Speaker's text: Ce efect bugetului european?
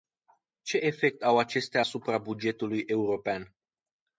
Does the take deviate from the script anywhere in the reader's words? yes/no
yes